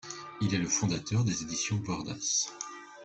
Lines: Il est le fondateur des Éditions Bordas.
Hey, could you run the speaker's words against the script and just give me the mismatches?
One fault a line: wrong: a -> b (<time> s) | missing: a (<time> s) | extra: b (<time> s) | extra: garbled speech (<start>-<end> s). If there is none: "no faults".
no faults